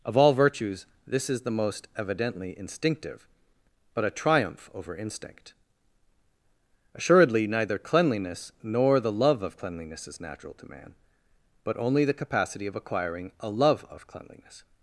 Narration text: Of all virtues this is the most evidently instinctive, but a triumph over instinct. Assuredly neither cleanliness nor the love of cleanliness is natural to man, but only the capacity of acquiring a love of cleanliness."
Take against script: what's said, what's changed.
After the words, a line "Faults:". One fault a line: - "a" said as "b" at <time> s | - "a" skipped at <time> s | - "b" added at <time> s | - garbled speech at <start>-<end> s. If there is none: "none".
Of all virtues this is the most evidently instinctive, but a triumph over instinct. Assuredly neither cleanliness nor the love of cleanliness is natural to man, but only the capacity of acquiring a love of cleanliness."
Faults:
none